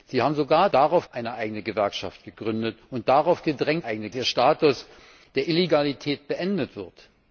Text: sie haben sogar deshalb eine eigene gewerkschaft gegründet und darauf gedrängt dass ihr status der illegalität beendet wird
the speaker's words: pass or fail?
fail